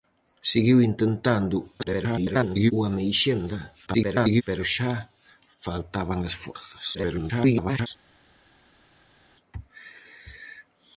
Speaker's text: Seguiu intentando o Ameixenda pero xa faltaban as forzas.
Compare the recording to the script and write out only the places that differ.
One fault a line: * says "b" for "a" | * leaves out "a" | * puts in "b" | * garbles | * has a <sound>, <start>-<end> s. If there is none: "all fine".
* garbles
* garbles
* garbles